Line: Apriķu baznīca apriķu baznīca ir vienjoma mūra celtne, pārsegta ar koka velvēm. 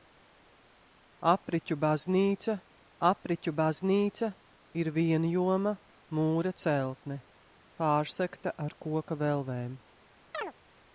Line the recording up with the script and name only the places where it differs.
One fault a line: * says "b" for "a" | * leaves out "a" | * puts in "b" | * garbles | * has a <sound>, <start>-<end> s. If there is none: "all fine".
* has a chirp, 10.3-10.5 s